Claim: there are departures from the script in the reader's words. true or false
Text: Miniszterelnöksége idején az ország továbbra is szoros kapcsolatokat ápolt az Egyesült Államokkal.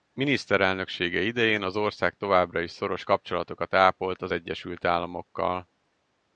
false